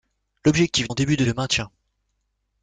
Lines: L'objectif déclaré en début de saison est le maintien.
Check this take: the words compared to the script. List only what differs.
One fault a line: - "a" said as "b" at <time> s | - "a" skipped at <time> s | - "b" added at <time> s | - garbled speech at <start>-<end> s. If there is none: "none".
- "déclaré" skipped at 0.9 s
- "saison est" skipped at 1.2 s